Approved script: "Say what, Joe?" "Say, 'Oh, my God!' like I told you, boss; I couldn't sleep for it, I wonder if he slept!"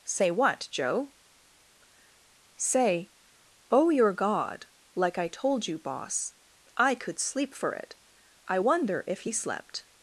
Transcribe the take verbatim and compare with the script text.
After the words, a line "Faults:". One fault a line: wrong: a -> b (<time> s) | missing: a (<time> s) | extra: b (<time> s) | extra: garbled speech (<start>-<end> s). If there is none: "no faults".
"Say what, Joe?" "Say, 'Oh, your God!' like I told you, boss; I could sleep for it, I wonder if he slept!"
Faults:
wrong: my -> your (3.9 s)
wrong: couldn't -> could (7.0 s)